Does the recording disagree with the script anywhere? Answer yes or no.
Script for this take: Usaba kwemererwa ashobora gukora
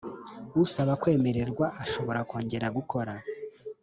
yes